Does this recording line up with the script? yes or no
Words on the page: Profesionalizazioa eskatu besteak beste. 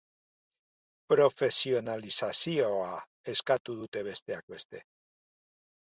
no